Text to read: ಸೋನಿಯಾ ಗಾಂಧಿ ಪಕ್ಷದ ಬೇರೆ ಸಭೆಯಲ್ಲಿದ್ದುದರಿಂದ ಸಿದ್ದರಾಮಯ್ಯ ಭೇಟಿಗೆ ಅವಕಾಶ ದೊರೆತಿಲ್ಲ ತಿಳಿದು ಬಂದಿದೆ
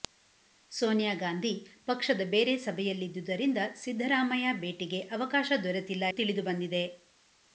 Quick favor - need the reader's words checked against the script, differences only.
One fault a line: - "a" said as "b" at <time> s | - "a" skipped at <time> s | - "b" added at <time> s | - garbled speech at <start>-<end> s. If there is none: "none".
none